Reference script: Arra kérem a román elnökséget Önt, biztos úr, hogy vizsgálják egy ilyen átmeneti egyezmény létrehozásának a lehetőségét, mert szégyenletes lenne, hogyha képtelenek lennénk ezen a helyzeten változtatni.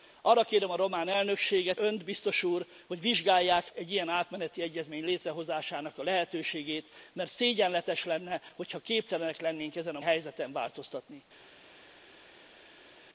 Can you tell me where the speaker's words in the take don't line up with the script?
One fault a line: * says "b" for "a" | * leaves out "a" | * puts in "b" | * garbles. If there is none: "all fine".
all fine